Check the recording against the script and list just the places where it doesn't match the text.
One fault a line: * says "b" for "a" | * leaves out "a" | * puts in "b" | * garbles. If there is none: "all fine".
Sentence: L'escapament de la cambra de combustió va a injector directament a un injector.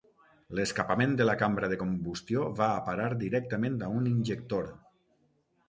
* says "parar" for "injector"